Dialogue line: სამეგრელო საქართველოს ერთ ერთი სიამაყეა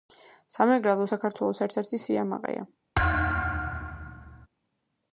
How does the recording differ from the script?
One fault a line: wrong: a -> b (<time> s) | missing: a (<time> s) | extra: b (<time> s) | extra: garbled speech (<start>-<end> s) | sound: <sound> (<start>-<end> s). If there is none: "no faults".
sound: thud (2.9-4.5 s)